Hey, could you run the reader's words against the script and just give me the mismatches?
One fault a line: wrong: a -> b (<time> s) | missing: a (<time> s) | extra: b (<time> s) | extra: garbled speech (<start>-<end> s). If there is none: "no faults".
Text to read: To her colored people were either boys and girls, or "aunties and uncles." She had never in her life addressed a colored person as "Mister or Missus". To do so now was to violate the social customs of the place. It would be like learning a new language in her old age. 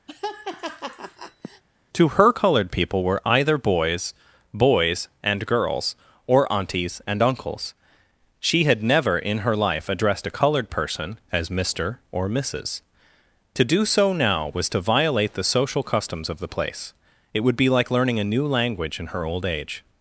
extra: boys (4.5 s)